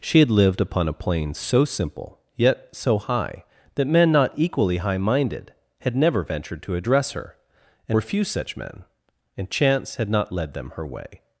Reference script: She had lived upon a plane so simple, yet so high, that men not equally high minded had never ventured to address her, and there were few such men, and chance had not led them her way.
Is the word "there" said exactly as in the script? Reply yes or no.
no